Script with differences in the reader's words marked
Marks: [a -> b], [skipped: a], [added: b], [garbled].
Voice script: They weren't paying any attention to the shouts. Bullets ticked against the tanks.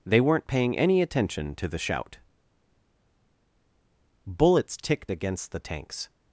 They weren't paying any attention to the [shouts. -> shout] Bullets ticked against the tanks.